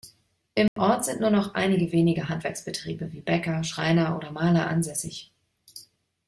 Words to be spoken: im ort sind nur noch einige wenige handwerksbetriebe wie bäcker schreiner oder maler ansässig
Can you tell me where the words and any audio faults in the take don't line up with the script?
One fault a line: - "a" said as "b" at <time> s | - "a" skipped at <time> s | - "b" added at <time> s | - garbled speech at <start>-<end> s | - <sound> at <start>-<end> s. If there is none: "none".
- dropout at 0.7-0.8 s